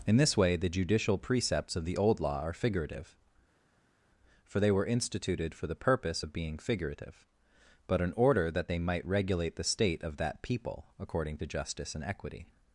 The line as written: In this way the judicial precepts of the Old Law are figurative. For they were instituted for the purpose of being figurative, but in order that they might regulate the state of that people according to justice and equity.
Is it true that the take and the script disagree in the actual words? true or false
false